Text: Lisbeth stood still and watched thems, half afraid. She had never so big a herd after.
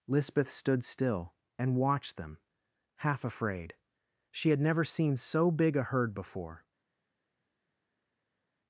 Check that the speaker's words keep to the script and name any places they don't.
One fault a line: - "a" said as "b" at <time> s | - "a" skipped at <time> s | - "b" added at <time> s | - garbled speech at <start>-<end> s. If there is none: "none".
- "thems" said as "them" at 2.2 s
- "seen" added at 4.8 s
- "after" said as "before" at 6.1 s